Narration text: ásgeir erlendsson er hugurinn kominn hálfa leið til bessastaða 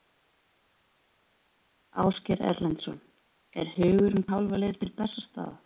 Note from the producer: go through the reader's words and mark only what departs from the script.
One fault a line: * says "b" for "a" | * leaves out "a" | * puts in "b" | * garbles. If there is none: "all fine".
* leaves out "kominn"